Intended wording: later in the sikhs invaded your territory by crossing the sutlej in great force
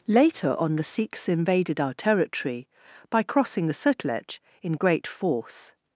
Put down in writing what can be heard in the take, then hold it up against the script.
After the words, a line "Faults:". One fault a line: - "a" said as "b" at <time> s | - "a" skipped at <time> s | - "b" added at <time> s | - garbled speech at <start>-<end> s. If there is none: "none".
later on the sikhs invaded our territory by crossing the sutlej in great force
Faults:
- "in" said as "on" at 0.6 s
- "your" said as "our" at 1.8 s